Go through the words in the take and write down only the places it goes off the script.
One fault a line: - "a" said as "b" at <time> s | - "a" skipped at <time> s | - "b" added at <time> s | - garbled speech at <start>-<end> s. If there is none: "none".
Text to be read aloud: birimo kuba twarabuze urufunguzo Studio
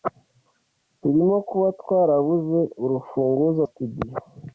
none